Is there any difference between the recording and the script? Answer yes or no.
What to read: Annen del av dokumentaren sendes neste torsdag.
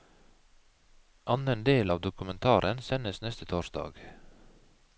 no